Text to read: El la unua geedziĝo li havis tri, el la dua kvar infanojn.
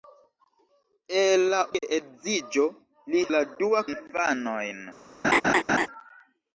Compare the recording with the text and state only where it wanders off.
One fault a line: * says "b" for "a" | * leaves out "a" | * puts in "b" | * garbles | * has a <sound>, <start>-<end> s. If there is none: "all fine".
* leaves out "unua"
* leaves out "havis tri el"
* leaves out "kvar"
* has a laugh, 5.2-5.9 s